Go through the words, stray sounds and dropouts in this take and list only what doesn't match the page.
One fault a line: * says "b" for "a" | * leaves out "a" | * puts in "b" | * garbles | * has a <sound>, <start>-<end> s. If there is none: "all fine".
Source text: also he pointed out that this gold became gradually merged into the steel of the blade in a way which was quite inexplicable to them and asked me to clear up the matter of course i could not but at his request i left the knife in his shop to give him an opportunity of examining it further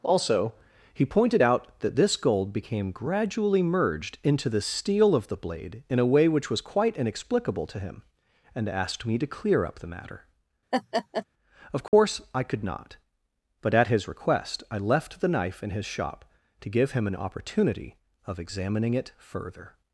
* says "him" for "them"
* has a laugh, 10.7-11.3 s
* has a dropout, 11.9-11.9 s